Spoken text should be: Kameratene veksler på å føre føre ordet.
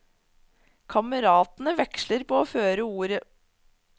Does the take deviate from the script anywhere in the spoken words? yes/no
yes